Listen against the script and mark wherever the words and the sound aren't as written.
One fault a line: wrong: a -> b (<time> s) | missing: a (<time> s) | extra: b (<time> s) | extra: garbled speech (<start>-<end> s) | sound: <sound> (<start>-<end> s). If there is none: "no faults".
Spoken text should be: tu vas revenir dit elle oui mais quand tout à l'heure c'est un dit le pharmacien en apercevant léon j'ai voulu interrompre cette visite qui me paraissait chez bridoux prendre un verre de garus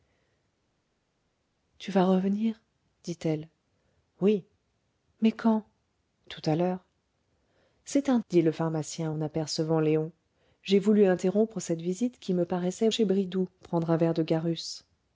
no faults